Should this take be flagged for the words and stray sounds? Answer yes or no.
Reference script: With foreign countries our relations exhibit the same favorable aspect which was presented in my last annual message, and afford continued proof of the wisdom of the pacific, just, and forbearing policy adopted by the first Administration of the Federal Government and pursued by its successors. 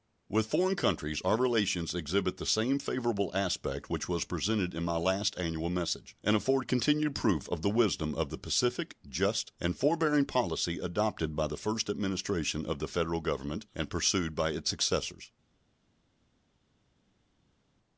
no